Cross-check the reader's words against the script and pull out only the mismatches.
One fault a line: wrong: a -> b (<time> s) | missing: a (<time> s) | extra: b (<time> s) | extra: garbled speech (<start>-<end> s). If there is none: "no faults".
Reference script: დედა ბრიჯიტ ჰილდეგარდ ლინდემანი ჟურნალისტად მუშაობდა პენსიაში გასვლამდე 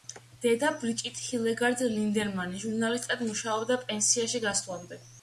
no faults